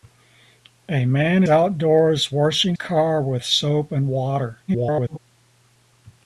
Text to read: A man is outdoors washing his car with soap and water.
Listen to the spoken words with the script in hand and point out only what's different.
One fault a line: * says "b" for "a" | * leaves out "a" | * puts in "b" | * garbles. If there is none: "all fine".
* leaves out "is"
* leaves out "his"
* garbles